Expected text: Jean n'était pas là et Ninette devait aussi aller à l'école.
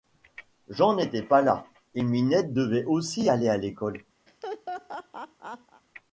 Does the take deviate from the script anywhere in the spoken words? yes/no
no